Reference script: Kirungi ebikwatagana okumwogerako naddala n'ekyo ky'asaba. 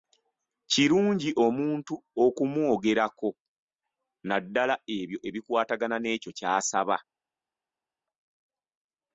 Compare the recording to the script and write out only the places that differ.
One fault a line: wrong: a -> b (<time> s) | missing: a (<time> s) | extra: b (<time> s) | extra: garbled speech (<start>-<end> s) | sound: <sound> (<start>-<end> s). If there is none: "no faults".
wrong: ebikwatagana -> omuntu (1.5 s)
extra: ebyo ebikwatagana (5.0 s)